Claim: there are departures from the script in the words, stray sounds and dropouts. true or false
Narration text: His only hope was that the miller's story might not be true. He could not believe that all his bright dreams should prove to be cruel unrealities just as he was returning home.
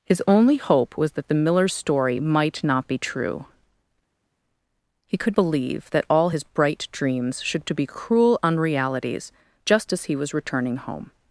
true